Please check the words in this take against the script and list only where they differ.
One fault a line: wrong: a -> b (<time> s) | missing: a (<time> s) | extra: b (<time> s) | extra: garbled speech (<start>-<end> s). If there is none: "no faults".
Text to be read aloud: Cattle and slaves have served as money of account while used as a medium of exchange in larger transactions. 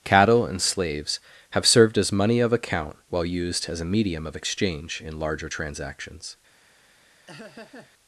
no faults